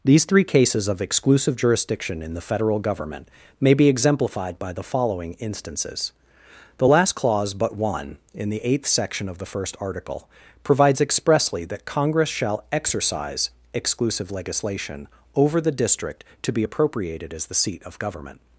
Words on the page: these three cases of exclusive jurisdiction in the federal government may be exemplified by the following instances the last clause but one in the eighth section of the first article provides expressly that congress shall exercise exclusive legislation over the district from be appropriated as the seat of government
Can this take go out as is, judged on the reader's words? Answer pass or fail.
fail